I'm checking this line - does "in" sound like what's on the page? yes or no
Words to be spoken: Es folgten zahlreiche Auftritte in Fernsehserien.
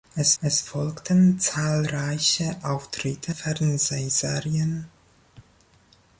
no